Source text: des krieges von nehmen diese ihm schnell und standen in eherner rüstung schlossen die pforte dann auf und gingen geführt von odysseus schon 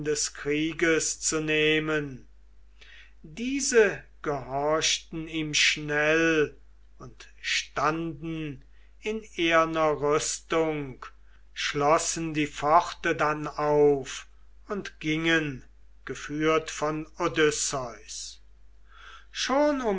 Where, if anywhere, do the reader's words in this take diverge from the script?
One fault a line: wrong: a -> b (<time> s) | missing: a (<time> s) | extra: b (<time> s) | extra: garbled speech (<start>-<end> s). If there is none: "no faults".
wrong: von -> zu (1.2 s)
extra: gehorchten (4.2 s)